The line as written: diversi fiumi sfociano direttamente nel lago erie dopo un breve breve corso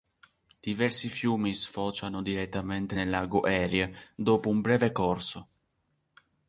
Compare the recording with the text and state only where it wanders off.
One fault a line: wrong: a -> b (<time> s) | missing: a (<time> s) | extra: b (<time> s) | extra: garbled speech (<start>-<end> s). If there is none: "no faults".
missing: breve (4.9 s)